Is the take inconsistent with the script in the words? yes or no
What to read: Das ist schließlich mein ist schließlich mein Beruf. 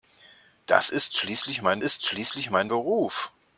no